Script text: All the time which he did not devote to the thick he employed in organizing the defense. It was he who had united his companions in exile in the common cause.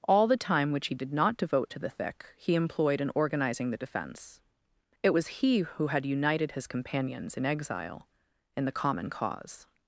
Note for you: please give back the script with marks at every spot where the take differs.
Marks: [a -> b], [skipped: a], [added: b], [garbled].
All the time which he did not devote to the thick he employed in organizing the defense. It was he who had united his companions in exile in the common cause.